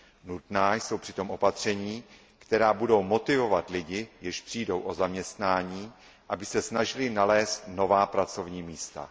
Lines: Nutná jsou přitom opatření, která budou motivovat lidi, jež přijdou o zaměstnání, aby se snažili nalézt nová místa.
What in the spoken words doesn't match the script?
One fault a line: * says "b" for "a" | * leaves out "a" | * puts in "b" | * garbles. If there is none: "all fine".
* puts in "pracovní"